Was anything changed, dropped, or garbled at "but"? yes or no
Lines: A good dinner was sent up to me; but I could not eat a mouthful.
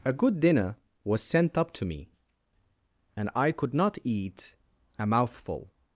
yes